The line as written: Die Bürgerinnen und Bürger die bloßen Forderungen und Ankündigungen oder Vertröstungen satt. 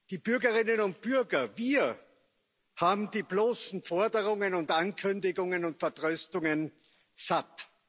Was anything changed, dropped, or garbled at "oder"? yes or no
yes